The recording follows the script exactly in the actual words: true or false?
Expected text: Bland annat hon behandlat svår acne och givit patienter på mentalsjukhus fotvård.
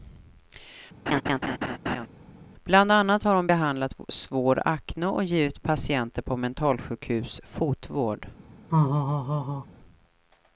false